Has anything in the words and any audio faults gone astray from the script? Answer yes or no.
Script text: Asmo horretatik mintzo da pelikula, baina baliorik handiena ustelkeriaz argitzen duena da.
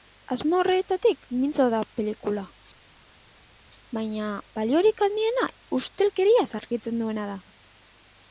no